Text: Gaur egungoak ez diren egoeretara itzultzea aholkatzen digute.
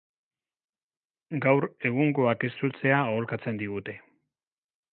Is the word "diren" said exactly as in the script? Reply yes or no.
no